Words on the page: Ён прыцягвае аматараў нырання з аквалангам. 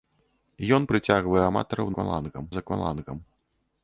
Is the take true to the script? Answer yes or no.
no